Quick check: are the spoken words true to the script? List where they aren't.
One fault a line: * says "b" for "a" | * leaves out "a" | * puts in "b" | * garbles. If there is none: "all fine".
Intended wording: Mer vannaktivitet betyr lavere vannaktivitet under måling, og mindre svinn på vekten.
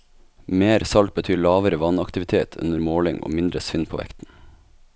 * says "salt" for "vannaktivitet"